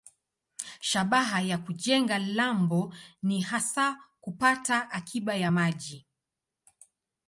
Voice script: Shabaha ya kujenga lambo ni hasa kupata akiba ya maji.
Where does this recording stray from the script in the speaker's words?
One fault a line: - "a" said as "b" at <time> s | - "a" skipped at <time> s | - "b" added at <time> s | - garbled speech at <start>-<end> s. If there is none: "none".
none